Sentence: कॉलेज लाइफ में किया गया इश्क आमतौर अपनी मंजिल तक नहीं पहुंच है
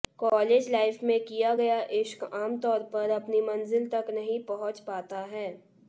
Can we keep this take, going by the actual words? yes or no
no